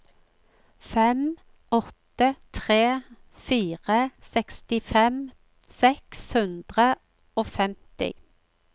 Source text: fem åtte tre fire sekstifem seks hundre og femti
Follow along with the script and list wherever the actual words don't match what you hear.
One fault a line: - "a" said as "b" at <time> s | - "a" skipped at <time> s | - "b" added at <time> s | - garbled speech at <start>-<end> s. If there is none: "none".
none